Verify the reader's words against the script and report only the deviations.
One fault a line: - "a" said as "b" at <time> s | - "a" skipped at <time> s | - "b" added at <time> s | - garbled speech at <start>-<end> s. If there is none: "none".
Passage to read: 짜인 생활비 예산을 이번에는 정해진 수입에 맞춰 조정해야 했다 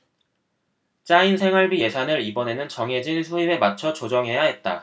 none